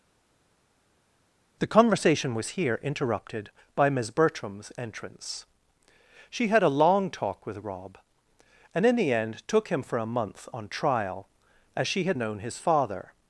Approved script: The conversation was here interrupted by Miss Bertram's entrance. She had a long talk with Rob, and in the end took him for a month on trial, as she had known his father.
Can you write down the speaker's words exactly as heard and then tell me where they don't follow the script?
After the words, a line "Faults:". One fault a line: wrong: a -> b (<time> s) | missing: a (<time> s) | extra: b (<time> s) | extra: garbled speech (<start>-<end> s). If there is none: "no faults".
The conversation was here interrupted by Miss Bertram's entrance. She had a long talk with Rob, and in the end took him for a month on trial, as she had known his father.
Faults:
no faults